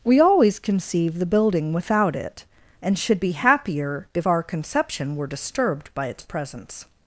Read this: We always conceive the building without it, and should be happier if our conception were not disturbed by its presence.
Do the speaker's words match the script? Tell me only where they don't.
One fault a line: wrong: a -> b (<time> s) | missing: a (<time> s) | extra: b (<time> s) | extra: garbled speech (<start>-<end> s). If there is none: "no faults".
missing: not (5.3 s)